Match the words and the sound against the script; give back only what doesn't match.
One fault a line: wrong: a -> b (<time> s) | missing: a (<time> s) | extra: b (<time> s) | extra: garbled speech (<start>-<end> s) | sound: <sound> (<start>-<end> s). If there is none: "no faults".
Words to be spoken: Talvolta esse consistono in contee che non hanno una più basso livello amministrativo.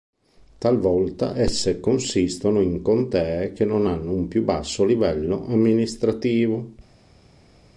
wrong: una -> un (4.1 s)